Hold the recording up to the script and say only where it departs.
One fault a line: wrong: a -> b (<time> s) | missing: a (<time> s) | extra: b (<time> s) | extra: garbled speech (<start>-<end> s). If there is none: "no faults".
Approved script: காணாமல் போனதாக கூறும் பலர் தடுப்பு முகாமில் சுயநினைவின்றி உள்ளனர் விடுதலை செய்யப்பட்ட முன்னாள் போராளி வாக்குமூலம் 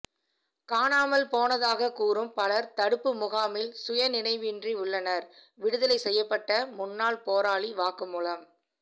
no faults